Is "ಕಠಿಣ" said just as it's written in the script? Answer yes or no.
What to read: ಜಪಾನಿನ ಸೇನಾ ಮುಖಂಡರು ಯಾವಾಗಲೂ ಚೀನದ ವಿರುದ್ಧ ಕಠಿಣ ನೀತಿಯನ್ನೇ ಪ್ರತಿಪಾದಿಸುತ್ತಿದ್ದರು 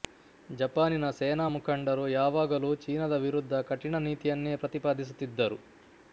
yes